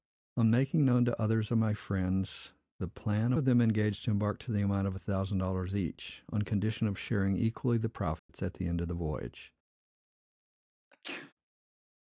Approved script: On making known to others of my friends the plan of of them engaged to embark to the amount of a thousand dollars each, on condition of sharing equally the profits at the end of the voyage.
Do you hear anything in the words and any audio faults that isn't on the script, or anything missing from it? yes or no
yes